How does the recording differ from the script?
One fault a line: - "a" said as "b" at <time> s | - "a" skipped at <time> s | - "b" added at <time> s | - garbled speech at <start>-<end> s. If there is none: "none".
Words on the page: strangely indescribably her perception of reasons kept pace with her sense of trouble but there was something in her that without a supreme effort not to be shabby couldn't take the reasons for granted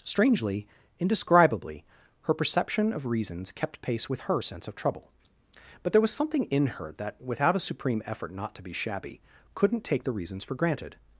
none